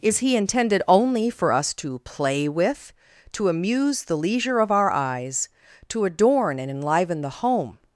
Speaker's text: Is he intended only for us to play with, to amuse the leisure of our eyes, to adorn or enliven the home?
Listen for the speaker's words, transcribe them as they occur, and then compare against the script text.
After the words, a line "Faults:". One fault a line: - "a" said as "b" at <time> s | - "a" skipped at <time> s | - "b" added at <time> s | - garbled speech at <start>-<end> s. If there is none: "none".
Is he intended only for us to play with, to amuse the leisure of our eyes, to adorn and enliven the home?
Faults:
- "or" said as "and" at 6.6 s